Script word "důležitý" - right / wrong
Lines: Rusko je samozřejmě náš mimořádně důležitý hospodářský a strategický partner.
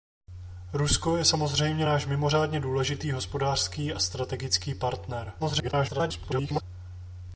right